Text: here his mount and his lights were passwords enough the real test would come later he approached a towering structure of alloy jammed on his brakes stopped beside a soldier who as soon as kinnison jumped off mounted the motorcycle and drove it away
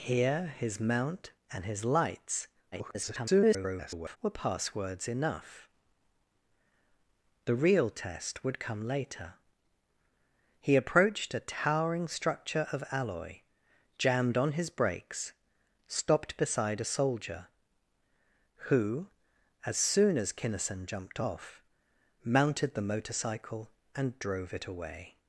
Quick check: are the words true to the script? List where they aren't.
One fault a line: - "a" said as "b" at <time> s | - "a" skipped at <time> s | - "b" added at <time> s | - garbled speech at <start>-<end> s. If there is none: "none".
- garbled speech at 2.7-4.2 s